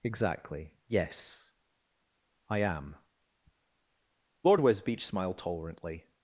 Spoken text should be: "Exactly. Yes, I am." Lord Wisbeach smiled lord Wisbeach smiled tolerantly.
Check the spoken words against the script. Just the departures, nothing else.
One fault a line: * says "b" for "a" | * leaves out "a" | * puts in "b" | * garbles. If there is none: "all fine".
* leaves out "lord Wisbeach smiled"